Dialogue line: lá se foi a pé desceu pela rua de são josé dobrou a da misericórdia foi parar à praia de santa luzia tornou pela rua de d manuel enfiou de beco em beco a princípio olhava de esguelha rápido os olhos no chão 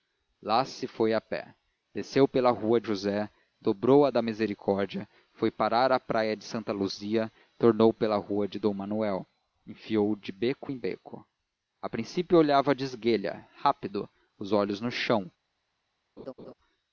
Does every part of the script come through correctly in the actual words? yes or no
no